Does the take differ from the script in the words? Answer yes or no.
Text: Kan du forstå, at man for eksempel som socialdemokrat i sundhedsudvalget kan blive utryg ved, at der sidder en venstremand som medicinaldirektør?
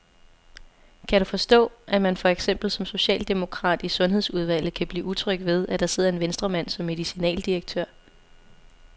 no